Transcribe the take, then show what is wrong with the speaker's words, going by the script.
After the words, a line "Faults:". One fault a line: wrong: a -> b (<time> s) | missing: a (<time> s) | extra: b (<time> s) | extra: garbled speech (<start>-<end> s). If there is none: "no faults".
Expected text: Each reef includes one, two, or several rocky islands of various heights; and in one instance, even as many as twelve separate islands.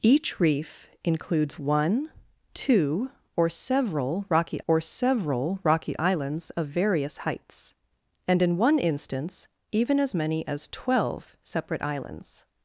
Each reef includes one, two, or several rocky or several rocky islands of various heights; and in one instance, even as many as twelve separate islands.
Faults:
extra: or several rocky (4.7 s)